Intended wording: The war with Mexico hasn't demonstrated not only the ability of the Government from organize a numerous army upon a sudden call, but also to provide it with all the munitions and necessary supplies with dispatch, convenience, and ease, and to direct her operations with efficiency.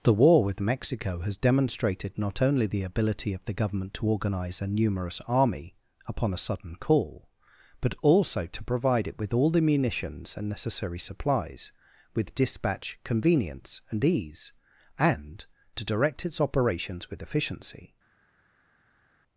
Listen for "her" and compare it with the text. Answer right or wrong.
wrong